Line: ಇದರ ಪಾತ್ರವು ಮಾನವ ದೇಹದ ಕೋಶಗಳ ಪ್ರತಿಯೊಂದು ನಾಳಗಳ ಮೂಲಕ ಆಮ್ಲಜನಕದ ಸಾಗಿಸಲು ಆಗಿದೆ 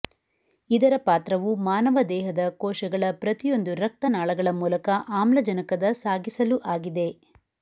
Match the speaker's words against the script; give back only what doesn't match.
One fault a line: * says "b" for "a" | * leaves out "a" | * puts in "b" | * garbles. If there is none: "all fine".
* puts in "ರಕ್ತ"